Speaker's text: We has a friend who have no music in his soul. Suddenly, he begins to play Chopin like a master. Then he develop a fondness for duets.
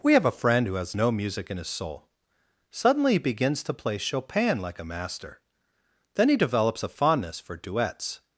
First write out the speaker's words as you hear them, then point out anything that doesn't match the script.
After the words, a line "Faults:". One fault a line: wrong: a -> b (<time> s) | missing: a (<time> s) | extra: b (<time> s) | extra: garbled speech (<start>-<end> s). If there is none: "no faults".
We have a friend who has no music in his soul. Suddenly, he begins to play Chopin like a master. Then he develops a fondness for duets.
Faults:
wrong: has -> have (0.1 s)
wrong: have -> has (0.8 s)
wrong: develop -> develops (6.4 s)